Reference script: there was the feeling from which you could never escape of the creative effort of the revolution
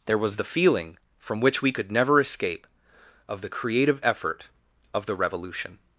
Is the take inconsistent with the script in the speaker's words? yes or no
yes